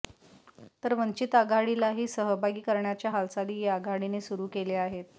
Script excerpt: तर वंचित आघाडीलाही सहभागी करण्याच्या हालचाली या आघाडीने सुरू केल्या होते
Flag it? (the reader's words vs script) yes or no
yes